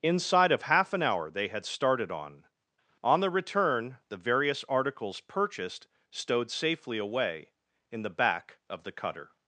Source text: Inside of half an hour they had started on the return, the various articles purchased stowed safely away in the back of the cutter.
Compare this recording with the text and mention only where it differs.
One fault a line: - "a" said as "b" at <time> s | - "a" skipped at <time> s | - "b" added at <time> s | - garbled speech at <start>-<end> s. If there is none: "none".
- "on" added at 3.0 s